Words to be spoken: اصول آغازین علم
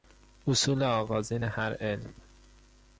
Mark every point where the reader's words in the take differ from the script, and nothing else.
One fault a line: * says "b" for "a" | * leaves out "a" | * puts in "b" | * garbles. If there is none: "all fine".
* puts in "هر"